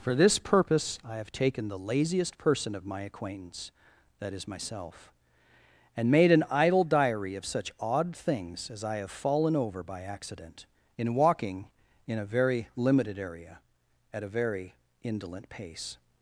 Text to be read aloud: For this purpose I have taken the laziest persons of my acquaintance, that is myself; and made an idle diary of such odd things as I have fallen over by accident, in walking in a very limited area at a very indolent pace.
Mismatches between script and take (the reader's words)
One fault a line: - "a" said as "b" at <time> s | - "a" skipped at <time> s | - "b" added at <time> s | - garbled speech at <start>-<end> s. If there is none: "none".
- "persons" said as "person" at 2.4 s